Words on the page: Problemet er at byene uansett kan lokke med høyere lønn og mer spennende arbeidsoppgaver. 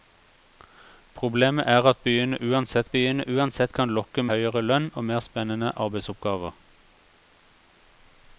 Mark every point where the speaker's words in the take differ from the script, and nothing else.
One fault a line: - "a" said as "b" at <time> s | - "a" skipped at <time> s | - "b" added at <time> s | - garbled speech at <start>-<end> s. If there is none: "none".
- "byene uansett" added at 3.0 s
- "med" skipped at 4.2 s